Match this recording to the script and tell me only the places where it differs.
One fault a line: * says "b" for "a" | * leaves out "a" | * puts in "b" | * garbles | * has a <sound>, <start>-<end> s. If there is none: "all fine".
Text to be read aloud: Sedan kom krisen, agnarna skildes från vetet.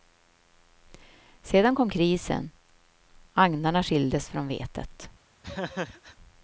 * has a laugh, 5.4-6.2 s